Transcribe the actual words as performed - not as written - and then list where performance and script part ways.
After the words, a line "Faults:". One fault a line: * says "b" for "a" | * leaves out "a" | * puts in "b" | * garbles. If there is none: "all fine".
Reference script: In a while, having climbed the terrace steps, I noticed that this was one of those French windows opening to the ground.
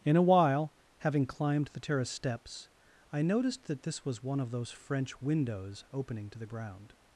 In a while, having climbed the terrace steps, I noticed that this was one of those French windows opening to the ground.
Faults:
all fine